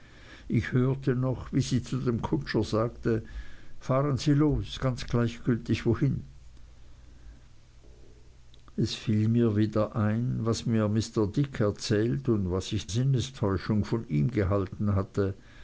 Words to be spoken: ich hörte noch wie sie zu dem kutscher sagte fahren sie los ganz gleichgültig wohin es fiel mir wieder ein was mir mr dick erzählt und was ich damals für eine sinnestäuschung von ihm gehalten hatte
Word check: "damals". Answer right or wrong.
wrong